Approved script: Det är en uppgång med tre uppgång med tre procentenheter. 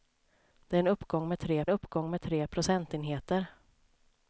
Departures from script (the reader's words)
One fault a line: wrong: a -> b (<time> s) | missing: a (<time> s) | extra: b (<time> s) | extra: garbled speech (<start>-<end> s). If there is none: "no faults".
no faults